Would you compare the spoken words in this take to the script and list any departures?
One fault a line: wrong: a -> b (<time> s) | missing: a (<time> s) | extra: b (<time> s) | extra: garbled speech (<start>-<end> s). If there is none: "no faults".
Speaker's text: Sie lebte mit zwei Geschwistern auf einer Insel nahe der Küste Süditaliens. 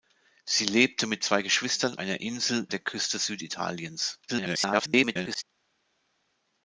missing: auf (2.0 s)
missing: nahe (2.7 s)
extra: garbled speech (4.3-5.4 s)